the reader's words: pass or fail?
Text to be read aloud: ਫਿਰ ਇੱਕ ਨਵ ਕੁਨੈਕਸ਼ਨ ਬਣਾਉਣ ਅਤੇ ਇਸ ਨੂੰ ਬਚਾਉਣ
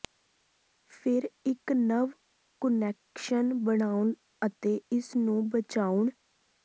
pass